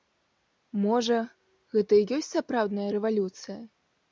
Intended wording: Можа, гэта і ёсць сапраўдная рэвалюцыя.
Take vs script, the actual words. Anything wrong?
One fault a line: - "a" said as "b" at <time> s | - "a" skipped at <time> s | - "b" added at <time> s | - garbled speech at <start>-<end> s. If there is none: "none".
none